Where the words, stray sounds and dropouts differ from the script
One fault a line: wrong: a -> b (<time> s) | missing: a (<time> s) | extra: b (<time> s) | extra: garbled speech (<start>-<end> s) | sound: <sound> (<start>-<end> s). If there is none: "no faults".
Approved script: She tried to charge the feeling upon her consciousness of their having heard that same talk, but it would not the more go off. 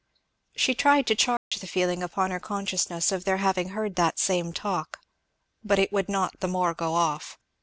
sound: dropout (1.4-1.5 s)